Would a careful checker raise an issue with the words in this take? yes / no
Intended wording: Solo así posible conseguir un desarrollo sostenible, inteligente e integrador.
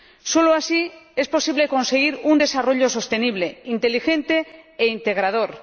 yes